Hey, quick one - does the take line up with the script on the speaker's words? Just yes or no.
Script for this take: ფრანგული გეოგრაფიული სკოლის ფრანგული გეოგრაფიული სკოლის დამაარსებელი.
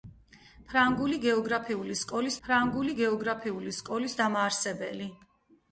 yes